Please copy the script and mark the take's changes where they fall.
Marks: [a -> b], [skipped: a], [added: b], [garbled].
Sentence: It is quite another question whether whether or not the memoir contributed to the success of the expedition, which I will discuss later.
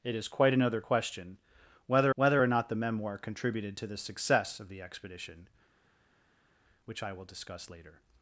It is quite another question whether whether or not the memoir contributed to the success of the expedition, which I will discuss later.